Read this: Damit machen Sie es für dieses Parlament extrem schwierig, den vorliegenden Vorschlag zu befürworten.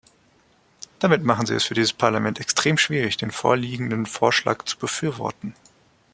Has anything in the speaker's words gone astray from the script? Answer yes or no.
no